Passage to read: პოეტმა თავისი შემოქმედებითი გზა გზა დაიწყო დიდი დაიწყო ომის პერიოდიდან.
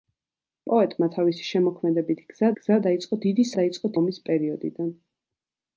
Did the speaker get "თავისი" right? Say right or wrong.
right